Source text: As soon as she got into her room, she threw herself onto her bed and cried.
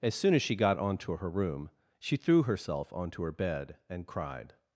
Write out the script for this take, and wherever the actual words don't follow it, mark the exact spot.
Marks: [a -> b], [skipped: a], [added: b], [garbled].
As soon as she got [into -> onto] her room, she threw herself onto her bed and cried.